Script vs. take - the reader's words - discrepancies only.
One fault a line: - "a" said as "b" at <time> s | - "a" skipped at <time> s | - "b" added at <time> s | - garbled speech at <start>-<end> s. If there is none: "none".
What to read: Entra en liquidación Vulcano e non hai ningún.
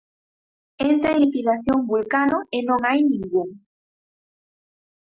none